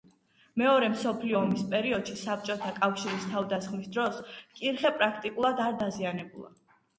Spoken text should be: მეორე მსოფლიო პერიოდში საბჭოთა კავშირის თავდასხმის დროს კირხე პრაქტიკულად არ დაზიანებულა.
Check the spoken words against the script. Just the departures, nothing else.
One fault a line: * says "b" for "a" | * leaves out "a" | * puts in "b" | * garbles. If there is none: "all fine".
* puts in "ომის"